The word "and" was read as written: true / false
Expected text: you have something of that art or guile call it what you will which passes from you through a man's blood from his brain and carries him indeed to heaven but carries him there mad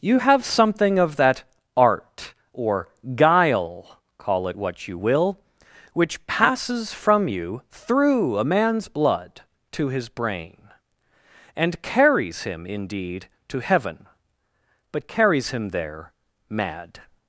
true